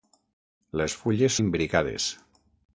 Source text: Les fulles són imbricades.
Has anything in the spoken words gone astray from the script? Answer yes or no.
yes